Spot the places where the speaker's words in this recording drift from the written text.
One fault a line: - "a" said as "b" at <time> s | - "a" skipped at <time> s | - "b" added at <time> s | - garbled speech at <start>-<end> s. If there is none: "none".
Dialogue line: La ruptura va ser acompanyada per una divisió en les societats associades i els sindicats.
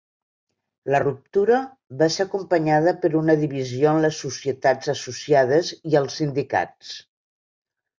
none